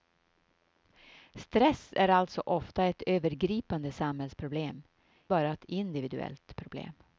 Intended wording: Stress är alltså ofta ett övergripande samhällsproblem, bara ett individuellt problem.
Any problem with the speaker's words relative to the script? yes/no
no